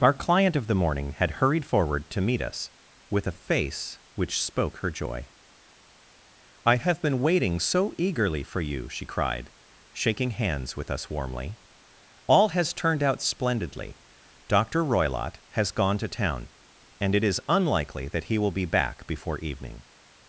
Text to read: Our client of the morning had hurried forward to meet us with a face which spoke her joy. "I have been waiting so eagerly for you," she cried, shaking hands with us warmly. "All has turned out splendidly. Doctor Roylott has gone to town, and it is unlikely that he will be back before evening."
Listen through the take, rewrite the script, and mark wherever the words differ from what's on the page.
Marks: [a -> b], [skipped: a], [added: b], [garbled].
Our client of the morning had hurried forward to meet us with a face which spoke her joy. "I have been waiting so eagerly for you," she cried, shaking hands with us warmly. "All has turned out splendidly. Doctor Roylott has gone to town, and it is unlikely that he will be back before evening."